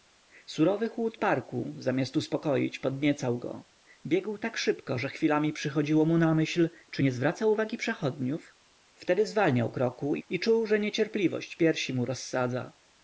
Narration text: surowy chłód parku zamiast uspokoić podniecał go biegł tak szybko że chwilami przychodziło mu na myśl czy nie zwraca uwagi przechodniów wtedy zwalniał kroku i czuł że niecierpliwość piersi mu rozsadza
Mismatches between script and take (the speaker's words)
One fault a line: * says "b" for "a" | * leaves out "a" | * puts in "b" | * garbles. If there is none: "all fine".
all fine